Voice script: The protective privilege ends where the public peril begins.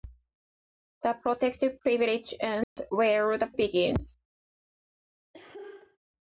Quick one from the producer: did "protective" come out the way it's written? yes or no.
yes